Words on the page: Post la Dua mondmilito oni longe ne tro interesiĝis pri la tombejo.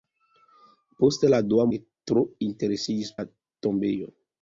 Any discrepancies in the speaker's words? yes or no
yes